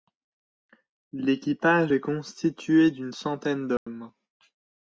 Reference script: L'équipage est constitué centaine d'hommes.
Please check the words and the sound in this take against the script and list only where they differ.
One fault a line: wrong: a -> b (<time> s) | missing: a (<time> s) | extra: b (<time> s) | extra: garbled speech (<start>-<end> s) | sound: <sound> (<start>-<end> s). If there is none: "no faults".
extra: d'une (2.9 s)
sound: dropout (3.8-3.9 s)